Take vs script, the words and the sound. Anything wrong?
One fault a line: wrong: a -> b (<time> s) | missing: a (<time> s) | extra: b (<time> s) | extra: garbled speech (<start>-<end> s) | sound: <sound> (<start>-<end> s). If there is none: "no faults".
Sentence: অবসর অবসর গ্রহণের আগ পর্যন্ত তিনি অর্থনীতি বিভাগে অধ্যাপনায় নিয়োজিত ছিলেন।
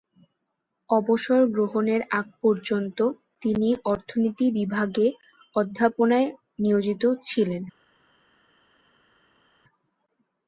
missing: অবসর (1.4 s)